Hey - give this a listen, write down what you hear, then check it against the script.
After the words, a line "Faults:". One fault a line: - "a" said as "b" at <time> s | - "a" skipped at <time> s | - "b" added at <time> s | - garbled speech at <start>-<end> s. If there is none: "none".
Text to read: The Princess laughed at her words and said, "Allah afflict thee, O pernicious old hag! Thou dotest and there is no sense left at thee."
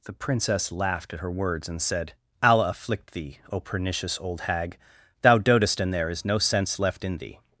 The Princess laughed at her words and said, "Allah afflict thee, O pernicious old hag! Thou dotest and there is no sense left in thee."
Faults:
- "at" said as "in" at 7.0 s